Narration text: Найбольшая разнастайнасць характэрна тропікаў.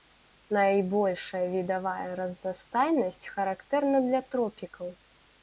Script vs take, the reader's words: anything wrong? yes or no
yes